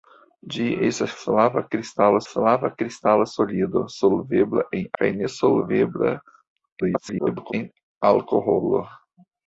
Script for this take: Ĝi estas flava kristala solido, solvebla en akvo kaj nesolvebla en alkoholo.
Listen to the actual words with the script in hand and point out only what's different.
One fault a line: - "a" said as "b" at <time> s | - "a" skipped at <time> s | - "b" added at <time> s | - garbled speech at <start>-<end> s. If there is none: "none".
- "flava kristala" added at 2.3 s
- "akvo" skipped at 4.9 s
- garbled speech at 6.8-7.5 s